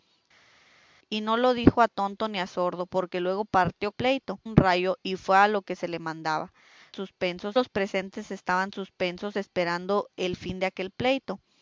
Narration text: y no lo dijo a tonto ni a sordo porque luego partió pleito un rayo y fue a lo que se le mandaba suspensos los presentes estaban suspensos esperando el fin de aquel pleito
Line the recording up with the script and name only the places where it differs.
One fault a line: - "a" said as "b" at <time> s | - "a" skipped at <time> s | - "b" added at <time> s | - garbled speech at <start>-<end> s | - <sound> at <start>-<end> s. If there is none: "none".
none